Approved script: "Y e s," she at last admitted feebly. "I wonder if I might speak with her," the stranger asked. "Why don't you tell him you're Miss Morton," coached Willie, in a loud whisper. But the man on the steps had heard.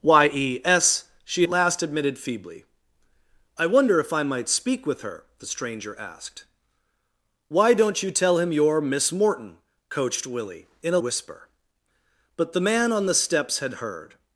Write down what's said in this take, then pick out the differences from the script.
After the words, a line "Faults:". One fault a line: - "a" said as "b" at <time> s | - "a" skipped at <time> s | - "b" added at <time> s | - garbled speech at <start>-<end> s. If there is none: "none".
"Y e s," she last admitted feebly. "I wonder if I might speak with her," the stranger asked. "Why don't you tell him you're Miss Morton," coached Willie, in a whisper. But the man on the steps had heard.
Faults:
- "at" skipped at 1.4 s
- "loud" skipped at 11.0 s